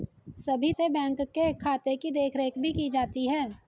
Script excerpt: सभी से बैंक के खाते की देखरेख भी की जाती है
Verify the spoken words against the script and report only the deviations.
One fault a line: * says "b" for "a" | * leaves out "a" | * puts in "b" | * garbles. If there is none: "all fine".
all fine